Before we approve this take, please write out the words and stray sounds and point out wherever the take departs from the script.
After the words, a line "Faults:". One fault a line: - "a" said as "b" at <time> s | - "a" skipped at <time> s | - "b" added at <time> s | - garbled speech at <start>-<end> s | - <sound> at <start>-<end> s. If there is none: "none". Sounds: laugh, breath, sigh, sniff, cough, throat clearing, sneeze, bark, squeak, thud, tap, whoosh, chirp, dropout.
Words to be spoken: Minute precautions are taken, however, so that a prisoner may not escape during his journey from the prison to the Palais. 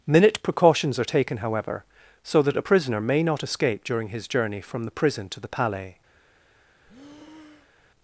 Minute precautions are taken, however, so that a prisoner may not escape during his journey from the prison to the Palais.
Faults:
- breath at 6.9-7.9 s